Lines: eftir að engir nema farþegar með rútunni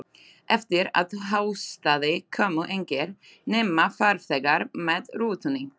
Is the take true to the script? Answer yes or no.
no